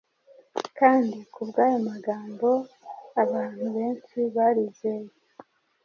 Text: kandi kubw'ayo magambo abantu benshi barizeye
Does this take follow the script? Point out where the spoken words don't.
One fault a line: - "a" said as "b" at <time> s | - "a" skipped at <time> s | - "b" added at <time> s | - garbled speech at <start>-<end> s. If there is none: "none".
none